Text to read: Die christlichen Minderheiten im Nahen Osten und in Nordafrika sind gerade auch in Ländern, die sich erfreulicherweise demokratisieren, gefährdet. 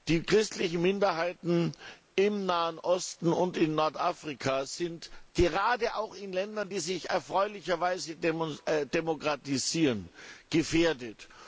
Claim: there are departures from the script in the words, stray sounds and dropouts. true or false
false